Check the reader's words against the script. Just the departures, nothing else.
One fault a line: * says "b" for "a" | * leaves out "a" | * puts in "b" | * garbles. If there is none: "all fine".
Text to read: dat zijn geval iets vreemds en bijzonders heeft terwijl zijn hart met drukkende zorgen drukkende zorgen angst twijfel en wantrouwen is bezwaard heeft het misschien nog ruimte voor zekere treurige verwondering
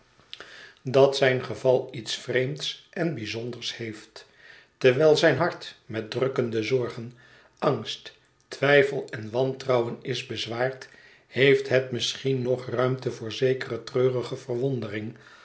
* leaves out "drukkende zorgen"